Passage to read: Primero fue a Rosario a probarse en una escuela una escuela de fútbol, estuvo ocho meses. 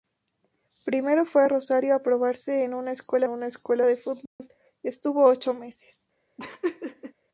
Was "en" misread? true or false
false